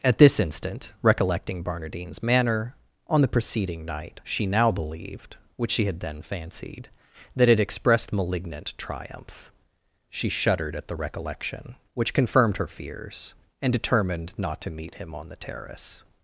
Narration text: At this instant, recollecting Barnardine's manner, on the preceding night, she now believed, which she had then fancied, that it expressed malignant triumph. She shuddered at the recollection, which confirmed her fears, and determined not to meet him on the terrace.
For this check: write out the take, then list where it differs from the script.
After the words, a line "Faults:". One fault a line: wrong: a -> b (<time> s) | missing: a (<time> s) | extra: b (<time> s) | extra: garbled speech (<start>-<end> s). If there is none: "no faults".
At this instant, recollecting Barnardine's manner, on the preceding night, she now believed, which she had then fancied, that it expressed malignant triumph. She shuddered at the recollection, which confirmed her fears, and determined not to meet him on the terrace.
Faults:
no faults